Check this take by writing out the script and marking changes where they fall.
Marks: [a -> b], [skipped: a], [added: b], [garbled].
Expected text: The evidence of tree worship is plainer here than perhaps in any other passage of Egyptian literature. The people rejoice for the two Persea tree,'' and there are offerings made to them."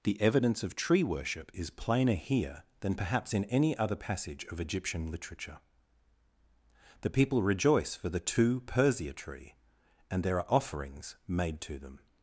The evidence of tree worship is plainer here than perhaps in any other passage of Egyptian literature. The people rejoice for the two Persea tree,'' and there are offerings made to them."